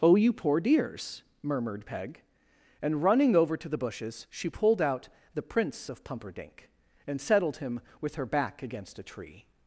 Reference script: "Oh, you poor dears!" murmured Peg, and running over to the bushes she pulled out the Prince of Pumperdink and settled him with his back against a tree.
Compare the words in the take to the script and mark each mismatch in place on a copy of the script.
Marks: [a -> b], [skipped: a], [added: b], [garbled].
"Oh, you poor dears!" murmured Peg, and running over to the bushes she pulled out the Prince of Pumperdink and settled him with [his -> her] back against a tree.